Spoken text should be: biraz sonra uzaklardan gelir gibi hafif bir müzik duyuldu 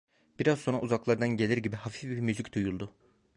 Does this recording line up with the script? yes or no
yes